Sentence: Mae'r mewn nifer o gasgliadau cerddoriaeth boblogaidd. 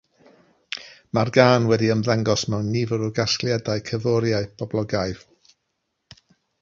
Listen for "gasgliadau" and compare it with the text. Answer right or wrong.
right